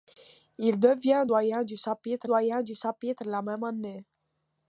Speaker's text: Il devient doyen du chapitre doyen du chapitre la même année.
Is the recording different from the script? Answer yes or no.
no